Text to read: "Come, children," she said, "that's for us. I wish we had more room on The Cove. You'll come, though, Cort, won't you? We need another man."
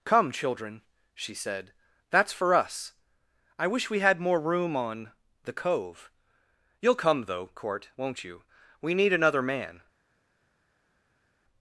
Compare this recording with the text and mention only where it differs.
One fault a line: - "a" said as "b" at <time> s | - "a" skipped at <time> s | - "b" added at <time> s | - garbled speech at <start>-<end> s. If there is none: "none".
none